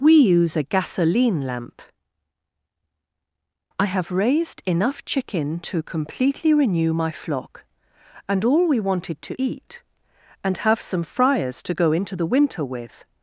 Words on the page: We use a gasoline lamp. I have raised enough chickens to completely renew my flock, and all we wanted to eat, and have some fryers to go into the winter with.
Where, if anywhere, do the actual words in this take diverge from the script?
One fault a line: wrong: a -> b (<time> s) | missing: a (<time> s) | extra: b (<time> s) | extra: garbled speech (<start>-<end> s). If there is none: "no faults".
wrong: chickens -> chicken (5.0 s)